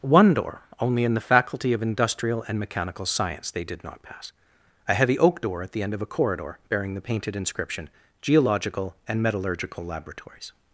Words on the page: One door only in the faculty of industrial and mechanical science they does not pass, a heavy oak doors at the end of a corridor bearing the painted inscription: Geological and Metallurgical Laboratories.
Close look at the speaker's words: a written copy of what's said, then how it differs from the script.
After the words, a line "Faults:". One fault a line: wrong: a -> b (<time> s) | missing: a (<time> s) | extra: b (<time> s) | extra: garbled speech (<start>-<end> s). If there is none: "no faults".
One door only in the faculty of industrial and mechanical science they did not pass, a heavy oak door at the end of a corridor bearing the painted inscription: Geological and Metallurgical Laboratories.
Faults:
wrong: does -> did (3.6 s)
wrong: doors -> door (5.4 s)